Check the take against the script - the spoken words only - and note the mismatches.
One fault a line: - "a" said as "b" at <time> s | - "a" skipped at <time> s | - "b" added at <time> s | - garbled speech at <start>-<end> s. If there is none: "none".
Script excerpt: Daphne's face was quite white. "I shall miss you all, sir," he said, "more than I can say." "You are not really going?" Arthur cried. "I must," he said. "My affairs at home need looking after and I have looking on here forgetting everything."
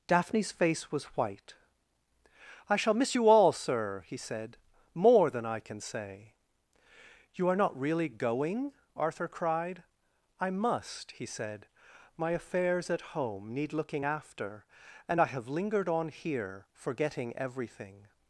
- "quite" skipped at 1.0 s
- "looking" said as "lingered" at 15.5 s